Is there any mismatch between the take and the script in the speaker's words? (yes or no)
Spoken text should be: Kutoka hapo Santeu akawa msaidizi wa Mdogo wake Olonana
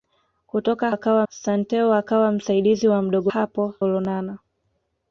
yes